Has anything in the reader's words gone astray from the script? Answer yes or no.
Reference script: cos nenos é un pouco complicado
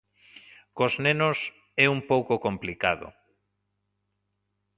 no